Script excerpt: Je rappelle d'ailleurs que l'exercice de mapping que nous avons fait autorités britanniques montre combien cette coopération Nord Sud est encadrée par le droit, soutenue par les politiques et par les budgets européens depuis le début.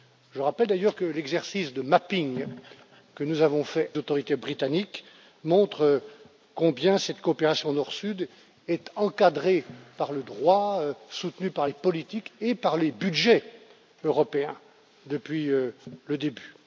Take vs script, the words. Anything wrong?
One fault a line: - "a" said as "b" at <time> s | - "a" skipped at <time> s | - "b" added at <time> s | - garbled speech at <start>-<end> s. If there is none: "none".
none